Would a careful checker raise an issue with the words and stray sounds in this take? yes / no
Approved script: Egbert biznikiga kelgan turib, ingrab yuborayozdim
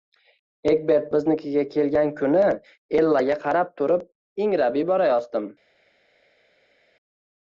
yes